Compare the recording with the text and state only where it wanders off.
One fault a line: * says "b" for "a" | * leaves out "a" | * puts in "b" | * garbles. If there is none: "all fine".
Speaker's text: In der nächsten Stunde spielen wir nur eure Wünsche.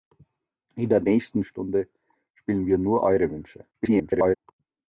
* garbles